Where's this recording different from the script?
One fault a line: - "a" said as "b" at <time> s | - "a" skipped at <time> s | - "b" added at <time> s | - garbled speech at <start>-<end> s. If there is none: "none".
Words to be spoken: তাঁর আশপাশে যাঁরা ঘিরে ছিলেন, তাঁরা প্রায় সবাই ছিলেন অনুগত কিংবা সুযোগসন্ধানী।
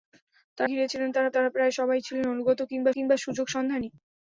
- "আশপাশে যাঁরা" skipped at 0.7 s
- "তাঁরা" added at 1.3 s
- "কিংবা" added at 2.9 s